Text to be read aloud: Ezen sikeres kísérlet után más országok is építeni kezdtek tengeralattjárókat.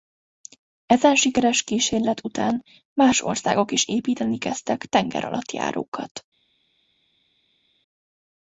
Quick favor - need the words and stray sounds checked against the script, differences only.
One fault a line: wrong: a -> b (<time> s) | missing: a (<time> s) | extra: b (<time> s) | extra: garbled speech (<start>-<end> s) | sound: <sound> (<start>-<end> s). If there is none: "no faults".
no faults